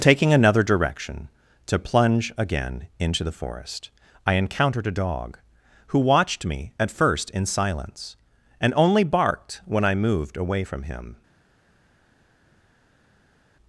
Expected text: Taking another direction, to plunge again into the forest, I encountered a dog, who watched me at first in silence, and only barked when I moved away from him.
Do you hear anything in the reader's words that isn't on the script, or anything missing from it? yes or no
no